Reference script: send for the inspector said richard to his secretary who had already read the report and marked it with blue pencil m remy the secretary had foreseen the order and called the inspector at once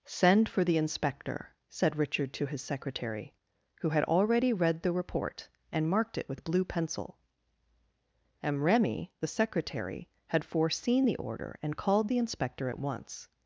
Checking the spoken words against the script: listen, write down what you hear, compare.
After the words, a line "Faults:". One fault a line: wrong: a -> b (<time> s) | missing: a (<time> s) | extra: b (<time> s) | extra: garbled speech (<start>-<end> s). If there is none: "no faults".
send for the inspector said richard to his secretary who had already read the report and marked it with blue pencil m remy the secretary had foreseen the order and called the inspector at once
Faults:
no faults